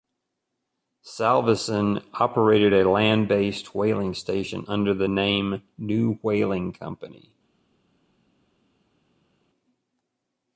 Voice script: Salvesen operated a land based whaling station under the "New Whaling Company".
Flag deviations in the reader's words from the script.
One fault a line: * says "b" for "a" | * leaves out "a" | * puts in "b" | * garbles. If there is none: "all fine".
* puts in "name"